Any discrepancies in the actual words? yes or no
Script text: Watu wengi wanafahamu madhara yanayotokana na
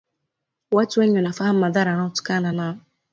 no